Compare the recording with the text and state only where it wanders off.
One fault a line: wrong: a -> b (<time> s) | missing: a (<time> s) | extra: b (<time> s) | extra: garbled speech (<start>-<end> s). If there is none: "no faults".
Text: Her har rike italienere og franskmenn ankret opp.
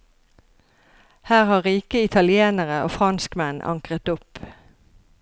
no faults